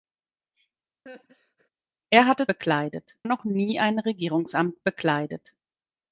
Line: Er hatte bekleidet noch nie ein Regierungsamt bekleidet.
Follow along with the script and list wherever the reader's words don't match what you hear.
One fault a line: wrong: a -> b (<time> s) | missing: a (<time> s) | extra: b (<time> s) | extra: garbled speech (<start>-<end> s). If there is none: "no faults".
no faults